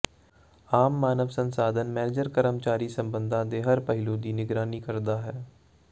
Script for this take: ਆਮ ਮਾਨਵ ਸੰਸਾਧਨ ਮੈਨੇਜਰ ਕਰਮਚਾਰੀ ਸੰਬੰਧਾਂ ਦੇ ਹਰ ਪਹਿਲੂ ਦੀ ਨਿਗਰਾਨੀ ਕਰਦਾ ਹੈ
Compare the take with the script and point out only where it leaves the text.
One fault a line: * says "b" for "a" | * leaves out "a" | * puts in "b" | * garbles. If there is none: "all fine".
all fine